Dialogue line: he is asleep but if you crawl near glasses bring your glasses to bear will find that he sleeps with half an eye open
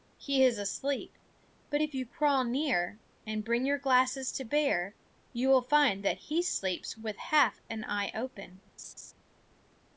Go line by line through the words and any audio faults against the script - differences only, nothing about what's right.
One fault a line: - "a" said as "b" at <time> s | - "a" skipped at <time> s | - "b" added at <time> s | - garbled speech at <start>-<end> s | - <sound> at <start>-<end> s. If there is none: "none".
- "glasses" said as "and" at 3.3 s
- "you" added at 5.3 s
- laugh at 8.8-9.1 s